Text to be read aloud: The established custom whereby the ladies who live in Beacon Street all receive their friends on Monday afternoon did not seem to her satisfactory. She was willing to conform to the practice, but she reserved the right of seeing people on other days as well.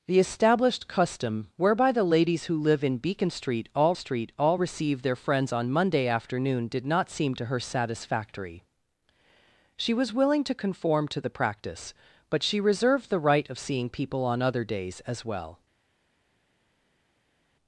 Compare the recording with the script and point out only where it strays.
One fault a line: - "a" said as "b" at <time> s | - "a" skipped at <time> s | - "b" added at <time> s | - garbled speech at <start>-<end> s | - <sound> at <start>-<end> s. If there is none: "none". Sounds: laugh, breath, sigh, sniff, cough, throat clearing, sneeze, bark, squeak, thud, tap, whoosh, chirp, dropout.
- "Street all" added at 3.9 s